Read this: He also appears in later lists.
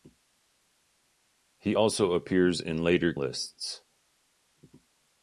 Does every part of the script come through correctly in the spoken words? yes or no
yes